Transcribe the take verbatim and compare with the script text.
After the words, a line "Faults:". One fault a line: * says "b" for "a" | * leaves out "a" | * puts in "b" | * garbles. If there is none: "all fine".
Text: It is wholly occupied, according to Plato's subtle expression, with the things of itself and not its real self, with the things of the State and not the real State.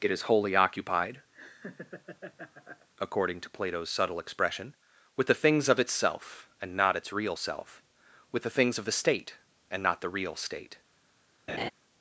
It is wholly occupied, according to Plato's subtle expression, with the things of itself and not its real self, with the things of the State and not the real State.
Faults:
all fine